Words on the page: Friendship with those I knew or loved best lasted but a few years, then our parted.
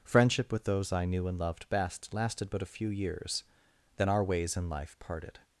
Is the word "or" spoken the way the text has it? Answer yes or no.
no